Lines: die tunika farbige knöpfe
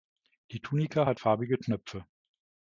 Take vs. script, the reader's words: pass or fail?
fail